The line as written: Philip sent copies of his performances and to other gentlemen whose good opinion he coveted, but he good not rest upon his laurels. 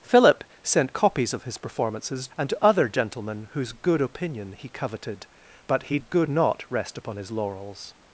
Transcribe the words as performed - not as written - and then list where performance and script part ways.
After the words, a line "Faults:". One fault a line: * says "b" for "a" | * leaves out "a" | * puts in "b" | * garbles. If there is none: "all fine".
Philip sent copies of his performances and to other gentlemen whose good opinion he coveted, but he good not rest upon his laurels.
Faults:
all fine